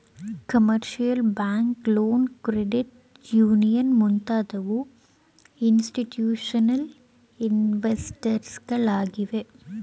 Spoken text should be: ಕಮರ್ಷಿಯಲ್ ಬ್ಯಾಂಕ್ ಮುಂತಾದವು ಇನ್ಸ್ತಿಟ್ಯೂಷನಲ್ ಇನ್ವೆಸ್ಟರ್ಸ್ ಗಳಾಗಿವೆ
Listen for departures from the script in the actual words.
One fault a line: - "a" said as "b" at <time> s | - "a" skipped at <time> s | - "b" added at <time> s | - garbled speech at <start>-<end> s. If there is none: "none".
- "ಲೋನ್ ಕ್ರೆಡಿಟ್ ಯೂನಿಯನ್" added at 1.9 s